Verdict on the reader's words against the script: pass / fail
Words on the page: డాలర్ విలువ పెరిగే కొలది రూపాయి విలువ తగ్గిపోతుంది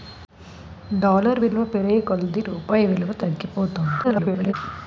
fail